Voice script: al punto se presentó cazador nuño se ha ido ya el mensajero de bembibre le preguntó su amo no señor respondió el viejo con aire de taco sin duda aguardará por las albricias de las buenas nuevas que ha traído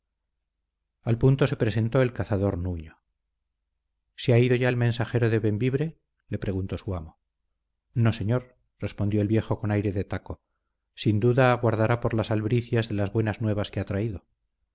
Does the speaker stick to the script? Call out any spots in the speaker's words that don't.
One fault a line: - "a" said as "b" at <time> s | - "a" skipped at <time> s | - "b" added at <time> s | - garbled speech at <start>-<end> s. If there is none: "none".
- "el" added at 2.0 s